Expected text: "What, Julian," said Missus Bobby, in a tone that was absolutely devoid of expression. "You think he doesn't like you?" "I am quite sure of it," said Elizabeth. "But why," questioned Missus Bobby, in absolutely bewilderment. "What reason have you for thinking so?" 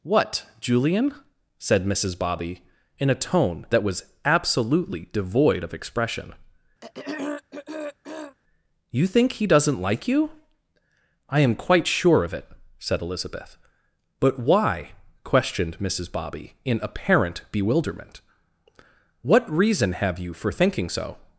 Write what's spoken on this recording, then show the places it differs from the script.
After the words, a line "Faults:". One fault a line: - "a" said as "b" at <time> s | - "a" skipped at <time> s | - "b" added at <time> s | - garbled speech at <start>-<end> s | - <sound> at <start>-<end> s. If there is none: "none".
"What, Julian," said Missus Bobby, in a tone that was absolutely devoid of expression. "You think he doesn't like you?" "I am quite sure of it," said Elizabeth. "But why," questioned Missus Bobby, in apparent bewilderment. "What reason have you for thinking so?"
Faults:
- throat clearing at 6.8-8.4 s
- "absolutely" said as "apparent" at 16.8 s